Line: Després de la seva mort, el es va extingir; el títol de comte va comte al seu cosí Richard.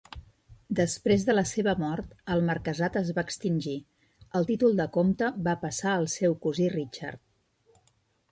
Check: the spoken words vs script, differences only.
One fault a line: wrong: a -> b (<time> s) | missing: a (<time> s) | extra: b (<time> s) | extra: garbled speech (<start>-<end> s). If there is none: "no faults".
extra: marquesat (2.5 s)
wrong: comte -> passar (5.6 s)